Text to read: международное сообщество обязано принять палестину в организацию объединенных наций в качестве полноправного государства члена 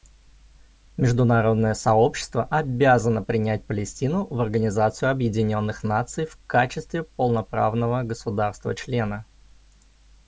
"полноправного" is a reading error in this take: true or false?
false